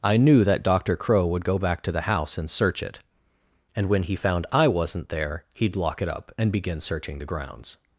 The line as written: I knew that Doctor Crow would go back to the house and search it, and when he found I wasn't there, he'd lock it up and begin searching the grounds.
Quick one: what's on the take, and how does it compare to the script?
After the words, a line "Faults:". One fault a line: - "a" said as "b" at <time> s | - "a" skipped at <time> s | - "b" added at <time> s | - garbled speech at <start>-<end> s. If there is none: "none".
I knew that Doctor Crow would go back to the house and search it, and when he found I wasn't there, he'd lock it up and begin searching the grounds.
Faults:
none